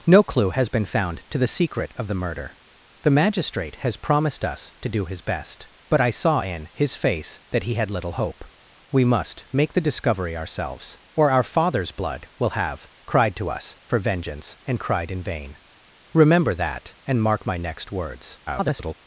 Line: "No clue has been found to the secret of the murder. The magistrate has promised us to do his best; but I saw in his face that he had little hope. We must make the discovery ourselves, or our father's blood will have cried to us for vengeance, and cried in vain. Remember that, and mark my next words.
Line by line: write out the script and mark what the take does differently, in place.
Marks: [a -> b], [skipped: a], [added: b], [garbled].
"No clue has been found to the secret of the murder. The magistrate has promised us to do his best; but I saw in his face that he had little hope. We must make the discovery ourselves, or our father's blood will have cried to us for vengeance, and cried in vain. Remember that, and mark my next words. [garbled]